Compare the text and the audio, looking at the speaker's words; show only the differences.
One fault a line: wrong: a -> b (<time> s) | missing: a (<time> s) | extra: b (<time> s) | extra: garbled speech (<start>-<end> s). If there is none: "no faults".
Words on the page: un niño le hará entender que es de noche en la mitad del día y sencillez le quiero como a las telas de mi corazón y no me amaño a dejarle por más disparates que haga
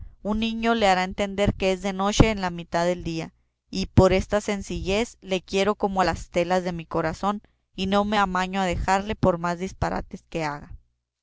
extra: por esta (3.9 s)